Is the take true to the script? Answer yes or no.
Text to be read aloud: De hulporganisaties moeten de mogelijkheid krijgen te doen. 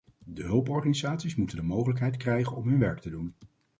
no